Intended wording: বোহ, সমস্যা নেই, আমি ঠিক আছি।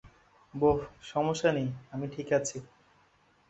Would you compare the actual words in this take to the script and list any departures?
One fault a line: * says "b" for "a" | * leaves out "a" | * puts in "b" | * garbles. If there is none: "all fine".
all fine